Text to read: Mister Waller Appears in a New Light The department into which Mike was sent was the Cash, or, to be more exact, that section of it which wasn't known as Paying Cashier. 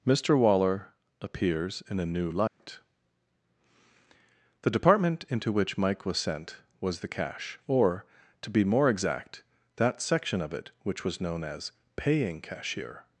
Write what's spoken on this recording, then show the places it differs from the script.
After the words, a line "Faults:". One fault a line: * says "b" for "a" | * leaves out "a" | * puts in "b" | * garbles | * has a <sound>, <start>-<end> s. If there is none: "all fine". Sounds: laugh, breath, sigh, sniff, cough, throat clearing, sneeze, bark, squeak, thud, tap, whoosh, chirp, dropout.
Mister Waller Appears in a New Light The department into which Mike was sent was the Cash, or, to be more exact, that section of it which was known as Paying Cashier.
Faults:
* has a dropout, 2.5-2.6 s
* says "was" for "wasn't"